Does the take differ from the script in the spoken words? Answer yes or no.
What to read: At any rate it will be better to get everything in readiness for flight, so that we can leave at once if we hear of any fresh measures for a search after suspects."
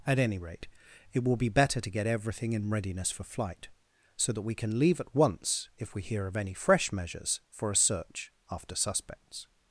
no